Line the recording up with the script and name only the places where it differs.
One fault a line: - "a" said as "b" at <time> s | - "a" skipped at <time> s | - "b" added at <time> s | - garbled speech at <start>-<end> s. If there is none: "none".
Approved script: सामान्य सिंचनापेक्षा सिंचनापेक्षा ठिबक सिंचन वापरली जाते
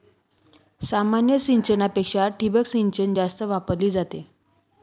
- "सिंचनापेक्षा" skipped at 2.3 s
- "जास्त" added at 3.1 s